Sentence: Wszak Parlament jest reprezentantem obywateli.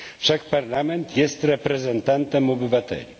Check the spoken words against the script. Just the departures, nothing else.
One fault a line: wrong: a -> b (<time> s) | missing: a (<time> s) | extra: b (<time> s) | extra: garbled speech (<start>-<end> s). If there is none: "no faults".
no faults